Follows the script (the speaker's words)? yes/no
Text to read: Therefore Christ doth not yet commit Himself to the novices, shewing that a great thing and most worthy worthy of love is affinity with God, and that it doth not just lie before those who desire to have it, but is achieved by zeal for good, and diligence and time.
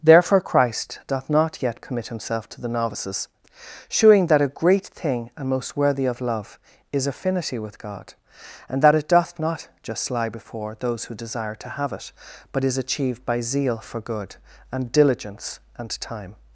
no